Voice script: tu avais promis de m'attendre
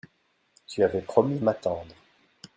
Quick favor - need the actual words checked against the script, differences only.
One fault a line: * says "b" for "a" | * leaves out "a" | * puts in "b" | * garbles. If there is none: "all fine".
* leaves out "de"